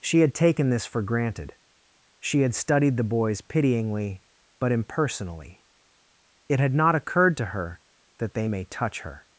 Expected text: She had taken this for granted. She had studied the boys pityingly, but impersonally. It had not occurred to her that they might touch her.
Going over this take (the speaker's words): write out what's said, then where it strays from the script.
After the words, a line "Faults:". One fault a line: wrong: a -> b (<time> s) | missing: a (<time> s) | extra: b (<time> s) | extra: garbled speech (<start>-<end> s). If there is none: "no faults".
She had taken this for granted. She had studied the boys pityingly, but impersonally. It had not occurred to her that they may touch her.
Faults:
wrong: might -> may (8.5 s)